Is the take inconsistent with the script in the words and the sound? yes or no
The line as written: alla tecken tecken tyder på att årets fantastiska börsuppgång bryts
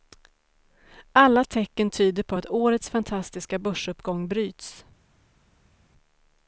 yes